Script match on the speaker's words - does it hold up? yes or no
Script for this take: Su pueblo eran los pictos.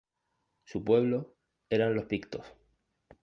yes